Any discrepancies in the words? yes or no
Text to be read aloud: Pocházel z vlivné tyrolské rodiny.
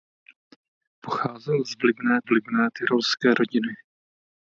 yes